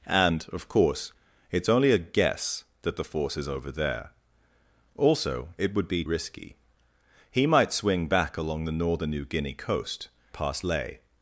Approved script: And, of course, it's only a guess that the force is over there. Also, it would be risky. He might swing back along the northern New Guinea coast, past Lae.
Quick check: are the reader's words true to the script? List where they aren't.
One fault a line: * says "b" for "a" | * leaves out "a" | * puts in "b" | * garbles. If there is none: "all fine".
all fine